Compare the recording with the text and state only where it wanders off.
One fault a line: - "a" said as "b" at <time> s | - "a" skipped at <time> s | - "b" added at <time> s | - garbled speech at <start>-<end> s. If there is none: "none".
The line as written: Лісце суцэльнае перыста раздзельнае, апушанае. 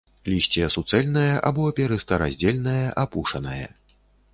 - "або" added at 1.5 s